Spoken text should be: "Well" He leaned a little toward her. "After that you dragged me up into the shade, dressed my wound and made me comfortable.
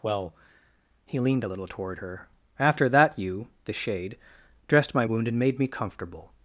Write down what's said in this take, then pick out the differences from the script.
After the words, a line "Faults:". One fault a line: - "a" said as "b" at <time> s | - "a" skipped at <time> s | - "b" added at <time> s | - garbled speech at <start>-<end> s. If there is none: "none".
"Well" He leaned a little toward her. "After that you the shade, dressed my wound and made me comfortable.
Faults:
- "dragged me up into" skipped at 3.5 s